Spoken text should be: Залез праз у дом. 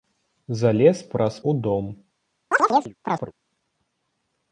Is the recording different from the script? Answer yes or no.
no